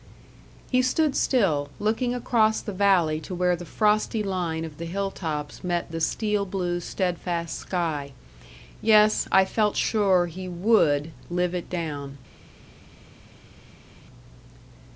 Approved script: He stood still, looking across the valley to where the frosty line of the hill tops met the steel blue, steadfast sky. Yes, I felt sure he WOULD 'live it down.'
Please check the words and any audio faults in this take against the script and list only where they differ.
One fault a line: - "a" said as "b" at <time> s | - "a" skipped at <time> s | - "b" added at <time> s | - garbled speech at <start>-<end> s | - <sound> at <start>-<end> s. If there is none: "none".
none